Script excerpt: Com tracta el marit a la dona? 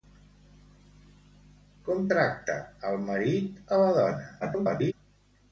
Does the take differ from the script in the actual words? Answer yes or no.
yes